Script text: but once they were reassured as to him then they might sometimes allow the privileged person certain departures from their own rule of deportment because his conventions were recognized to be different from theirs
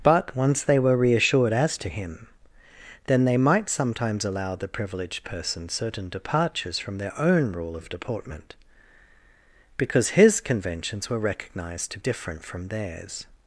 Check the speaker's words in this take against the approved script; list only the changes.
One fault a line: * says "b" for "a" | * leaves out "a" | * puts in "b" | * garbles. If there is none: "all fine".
* leaves out "be"